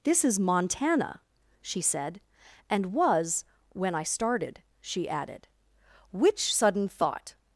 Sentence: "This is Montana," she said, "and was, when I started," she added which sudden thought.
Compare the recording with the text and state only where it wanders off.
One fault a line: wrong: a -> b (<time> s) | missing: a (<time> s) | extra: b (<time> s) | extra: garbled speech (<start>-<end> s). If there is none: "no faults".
no faults